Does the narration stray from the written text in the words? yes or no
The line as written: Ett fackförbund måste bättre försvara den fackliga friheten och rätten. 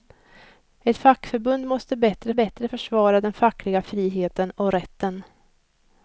yes